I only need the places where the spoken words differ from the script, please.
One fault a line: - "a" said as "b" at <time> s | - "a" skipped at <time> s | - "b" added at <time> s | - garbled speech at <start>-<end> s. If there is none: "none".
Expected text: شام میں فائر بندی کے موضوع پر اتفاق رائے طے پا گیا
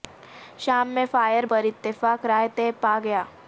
- "بندی کے موضوع" skipped at 1.4 s